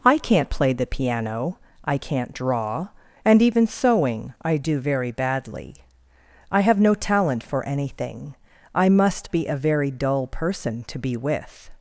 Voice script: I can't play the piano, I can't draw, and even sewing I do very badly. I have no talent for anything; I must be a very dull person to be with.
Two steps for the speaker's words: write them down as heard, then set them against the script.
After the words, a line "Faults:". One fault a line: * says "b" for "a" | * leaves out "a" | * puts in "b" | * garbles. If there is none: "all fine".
I can't play the piano, I can't draw, and even sewing I do very badly. I have no talent for anything; I must be a very dull person to be with.
Faults:
all fine